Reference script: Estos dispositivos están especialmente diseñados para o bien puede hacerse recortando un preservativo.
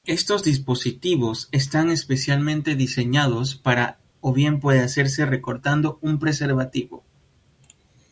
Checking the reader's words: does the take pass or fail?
pass